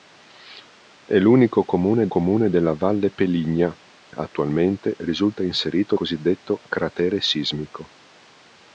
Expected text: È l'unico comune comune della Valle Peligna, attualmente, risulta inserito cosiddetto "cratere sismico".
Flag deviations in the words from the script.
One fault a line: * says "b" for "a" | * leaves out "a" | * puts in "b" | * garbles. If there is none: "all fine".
all fine